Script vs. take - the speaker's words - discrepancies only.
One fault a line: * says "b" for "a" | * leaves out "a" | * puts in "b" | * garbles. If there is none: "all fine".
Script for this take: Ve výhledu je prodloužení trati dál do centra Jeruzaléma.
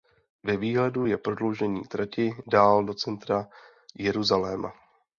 all fine